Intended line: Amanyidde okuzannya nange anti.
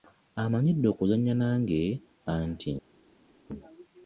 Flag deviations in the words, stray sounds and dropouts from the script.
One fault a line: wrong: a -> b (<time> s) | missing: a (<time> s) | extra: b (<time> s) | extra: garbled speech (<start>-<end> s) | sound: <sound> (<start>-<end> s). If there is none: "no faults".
no faults